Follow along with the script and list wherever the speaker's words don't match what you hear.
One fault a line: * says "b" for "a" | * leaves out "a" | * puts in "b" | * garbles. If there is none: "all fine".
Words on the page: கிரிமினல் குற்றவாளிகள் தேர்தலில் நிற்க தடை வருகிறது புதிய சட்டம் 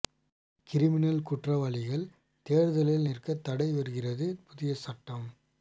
all fine